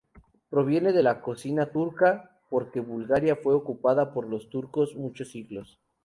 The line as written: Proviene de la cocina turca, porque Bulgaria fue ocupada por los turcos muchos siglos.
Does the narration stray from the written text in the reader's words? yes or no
no